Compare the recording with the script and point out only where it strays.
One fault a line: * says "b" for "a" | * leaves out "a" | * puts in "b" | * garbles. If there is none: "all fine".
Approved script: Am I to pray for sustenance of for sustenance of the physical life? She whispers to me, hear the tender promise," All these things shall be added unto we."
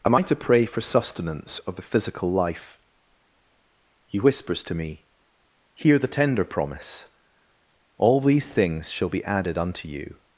* leaves out "for sustenance of"
* says "He" for "She"
* says "you" for "we"